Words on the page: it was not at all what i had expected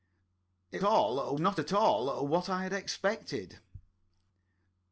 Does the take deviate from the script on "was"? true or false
true